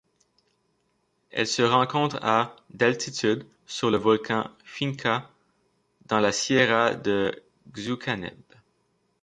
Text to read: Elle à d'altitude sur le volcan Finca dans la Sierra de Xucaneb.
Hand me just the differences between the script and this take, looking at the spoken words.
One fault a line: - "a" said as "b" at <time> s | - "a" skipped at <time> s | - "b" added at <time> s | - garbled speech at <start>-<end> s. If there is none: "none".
- "se rencontre" added at 1.4 s